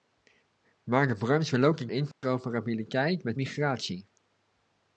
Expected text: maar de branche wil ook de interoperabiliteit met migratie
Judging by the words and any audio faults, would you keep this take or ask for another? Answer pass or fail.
fail